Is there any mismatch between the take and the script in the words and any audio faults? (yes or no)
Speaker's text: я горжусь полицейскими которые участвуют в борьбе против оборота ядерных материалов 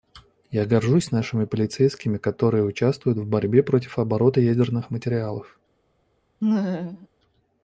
yes